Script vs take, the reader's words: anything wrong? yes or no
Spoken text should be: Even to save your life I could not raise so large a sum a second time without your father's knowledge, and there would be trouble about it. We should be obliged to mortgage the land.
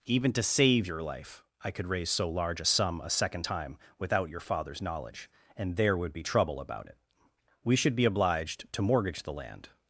yes